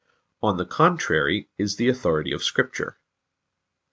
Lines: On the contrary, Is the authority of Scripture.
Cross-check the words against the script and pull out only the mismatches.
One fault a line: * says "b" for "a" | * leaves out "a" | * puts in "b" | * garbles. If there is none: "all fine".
all fine